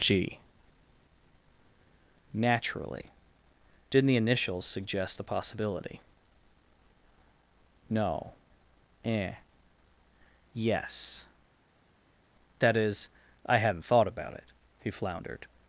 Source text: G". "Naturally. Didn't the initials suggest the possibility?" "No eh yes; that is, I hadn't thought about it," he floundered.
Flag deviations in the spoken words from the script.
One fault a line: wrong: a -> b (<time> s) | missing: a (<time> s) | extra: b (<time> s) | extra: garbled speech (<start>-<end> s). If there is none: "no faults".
no faults